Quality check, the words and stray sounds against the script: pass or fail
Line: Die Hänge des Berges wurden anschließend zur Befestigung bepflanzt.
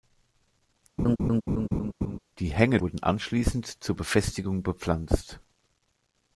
fail